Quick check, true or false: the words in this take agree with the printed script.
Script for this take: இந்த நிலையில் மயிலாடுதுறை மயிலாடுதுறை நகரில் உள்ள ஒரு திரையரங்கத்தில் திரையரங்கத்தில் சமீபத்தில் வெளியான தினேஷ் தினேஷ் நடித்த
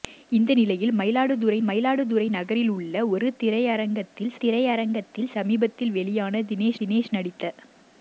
true